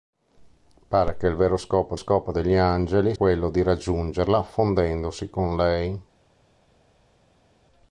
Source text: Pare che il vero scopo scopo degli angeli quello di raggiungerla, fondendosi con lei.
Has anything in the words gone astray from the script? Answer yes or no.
no